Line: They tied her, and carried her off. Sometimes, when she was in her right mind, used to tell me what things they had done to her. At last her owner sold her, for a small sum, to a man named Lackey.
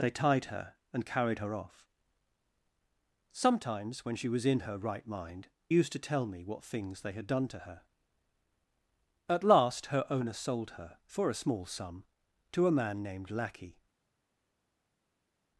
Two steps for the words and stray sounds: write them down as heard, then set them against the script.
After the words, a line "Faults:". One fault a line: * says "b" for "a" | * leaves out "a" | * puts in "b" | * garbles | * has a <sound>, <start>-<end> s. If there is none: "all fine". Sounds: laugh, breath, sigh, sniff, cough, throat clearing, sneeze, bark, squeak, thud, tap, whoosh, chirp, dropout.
They tied her, and carried her off. Sometimes, when she was in her right mind, used to tell me what things they had done to her. At last her owner sold her, for a small sum, to a man named Lackey.
Faults:
all fine